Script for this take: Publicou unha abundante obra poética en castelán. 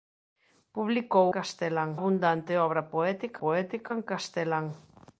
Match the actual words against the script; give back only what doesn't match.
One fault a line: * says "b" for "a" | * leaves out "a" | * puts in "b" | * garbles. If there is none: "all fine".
* says "castelán" for "unha"
* puts in "poética"